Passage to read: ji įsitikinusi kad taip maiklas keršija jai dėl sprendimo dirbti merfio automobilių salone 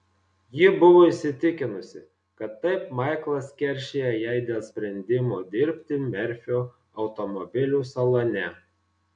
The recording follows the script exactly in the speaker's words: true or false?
false